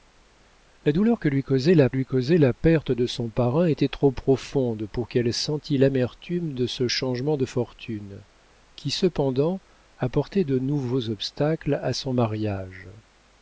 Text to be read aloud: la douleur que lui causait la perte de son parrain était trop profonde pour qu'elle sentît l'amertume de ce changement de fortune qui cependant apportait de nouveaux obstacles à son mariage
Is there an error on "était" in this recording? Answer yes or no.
no